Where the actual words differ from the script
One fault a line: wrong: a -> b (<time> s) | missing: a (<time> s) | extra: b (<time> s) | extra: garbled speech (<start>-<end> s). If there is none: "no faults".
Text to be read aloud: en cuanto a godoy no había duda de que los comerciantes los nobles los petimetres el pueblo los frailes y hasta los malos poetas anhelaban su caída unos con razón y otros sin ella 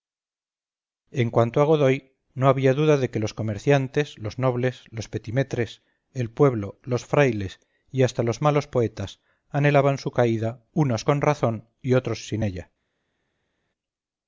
no faults